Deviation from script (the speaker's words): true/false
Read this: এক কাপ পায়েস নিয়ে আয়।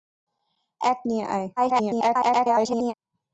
true